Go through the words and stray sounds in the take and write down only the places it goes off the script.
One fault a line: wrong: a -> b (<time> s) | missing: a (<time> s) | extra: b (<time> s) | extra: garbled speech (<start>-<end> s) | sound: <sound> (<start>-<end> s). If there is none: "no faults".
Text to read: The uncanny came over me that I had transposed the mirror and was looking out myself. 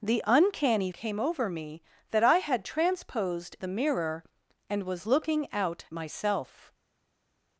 no faults